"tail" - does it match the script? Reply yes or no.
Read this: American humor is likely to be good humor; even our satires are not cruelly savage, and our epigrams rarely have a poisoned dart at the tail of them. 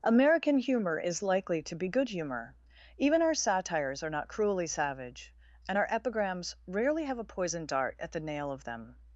no